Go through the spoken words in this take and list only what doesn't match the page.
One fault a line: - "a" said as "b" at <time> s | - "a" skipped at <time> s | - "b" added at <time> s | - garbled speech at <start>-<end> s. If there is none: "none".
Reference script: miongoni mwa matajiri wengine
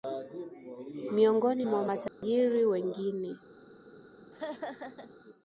none